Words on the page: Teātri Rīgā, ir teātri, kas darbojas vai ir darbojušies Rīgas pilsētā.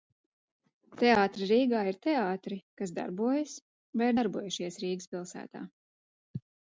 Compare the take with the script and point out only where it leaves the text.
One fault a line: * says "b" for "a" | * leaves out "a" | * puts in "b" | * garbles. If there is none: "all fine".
all fine